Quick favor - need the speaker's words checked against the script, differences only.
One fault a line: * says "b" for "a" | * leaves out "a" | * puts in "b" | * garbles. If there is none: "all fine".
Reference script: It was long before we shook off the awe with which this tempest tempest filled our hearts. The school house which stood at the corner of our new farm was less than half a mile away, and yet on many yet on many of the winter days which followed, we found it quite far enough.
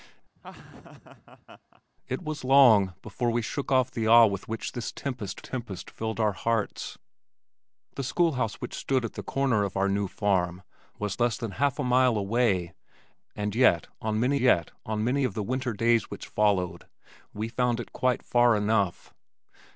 all fine